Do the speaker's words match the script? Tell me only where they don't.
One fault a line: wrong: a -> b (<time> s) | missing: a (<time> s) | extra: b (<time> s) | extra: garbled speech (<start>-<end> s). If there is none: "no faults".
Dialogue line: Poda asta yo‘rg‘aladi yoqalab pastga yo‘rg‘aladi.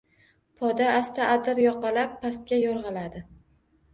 wrong: yo‘rg‘aladi -> adir (1.3 s)